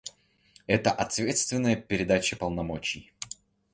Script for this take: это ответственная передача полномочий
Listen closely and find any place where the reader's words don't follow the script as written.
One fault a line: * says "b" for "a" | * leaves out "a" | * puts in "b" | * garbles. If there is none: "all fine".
all fine